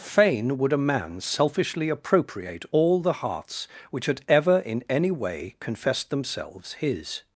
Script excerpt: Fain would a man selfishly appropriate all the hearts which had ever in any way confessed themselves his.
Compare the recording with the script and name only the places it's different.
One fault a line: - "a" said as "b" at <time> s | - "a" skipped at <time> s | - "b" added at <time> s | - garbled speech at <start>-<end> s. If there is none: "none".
none